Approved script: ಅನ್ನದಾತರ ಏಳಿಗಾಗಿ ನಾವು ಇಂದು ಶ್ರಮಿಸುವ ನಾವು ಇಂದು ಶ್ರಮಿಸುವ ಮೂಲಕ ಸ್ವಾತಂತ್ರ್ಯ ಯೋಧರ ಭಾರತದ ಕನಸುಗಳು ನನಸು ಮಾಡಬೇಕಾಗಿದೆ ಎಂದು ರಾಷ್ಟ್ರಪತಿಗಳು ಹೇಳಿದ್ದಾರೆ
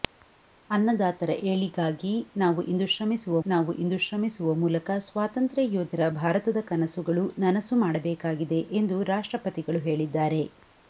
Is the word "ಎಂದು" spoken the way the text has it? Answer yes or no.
yes